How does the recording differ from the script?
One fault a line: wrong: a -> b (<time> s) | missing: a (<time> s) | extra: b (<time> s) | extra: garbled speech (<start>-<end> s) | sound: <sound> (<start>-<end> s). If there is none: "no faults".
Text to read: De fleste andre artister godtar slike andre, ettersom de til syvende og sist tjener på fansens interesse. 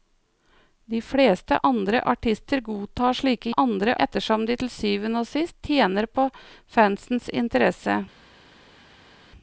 no faults